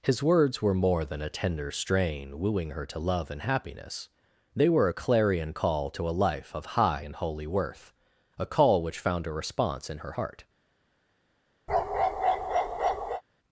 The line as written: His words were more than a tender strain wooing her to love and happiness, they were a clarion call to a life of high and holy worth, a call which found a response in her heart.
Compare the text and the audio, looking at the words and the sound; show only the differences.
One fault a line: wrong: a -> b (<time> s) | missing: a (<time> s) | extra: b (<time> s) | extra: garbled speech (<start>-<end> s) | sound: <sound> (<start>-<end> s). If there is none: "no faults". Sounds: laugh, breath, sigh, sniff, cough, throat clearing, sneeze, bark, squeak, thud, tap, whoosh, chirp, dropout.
sound: bark (11.7-13.2 s)